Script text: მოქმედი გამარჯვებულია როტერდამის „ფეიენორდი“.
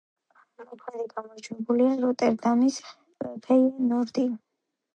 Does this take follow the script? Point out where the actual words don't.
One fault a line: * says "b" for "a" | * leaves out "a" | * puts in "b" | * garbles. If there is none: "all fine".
all fine